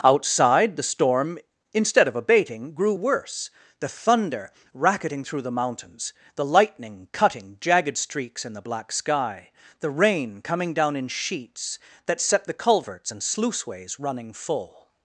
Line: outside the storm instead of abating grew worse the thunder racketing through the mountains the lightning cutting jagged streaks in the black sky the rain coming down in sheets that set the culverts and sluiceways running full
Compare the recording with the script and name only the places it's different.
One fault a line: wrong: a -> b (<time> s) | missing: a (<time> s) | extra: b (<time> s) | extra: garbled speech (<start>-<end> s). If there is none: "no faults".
no faults